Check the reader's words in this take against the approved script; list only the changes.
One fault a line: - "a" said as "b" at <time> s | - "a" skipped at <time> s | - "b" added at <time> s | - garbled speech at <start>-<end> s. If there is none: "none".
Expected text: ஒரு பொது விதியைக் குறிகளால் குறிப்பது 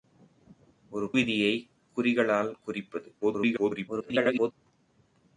- "பொது" skipped at 1.1 s
- garbled speech at 3.2-4.5 s